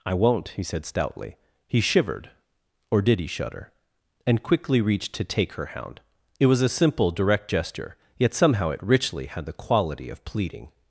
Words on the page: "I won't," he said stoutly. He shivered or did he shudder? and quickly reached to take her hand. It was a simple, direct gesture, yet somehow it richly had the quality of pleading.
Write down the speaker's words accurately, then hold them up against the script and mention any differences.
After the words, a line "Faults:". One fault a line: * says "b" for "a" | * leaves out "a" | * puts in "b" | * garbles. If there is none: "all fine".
"I won't," he said stoutly. He shivered or did he shudder? and quickly reached to take her hound. It was a simple, direct gesture, yet somehow it richly had the quality of pleading.
Faults:
* says "hound" for "hand"